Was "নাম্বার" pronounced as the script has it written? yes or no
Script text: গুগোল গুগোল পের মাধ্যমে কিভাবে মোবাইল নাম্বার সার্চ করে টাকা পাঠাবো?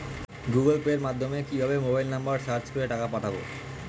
yes